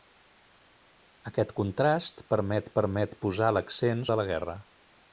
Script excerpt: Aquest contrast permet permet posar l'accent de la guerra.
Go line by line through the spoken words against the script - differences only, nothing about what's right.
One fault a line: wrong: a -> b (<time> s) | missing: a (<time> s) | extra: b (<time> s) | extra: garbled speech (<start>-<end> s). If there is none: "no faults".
no faults